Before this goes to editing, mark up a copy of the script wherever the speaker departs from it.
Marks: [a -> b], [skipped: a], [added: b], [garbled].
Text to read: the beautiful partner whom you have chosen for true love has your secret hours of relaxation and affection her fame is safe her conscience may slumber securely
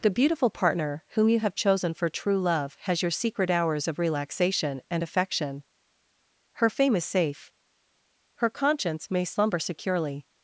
the beautiful partner whom you have chosen for true love has your secret hours of relaxation and affection her fame is safe her conscience may slumber securely